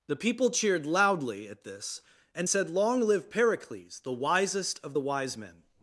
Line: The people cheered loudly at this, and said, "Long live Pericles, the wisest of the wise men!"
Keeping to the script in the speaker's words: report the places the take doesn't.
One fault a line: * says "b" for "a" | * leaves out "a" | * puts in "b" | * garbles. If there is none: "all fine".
all fine